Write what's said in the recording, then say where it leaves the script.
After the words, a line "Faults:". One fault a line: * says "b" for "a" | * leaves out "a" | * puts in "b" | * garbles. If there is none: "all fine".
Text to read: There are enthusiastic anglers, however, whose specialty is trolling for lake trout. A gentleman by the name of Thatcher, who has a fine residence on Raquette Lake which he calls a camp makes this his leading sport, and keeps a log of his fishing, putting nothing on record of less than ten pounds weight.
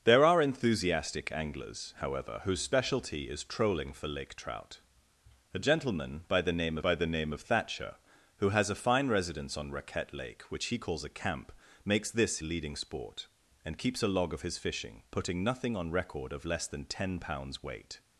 There are enthusiastic anglers, however, whose specialty is trolling for lake trout. A gentleman by the name by the name of Thatcher, who has a fine residence on Raquette Lake which he calls a camp makes this leading sport, and keeps a log of his fishing, putting nothing on record of less than ten pounds weight.
Faults:
* puts in "by the name"
* leaves out "his"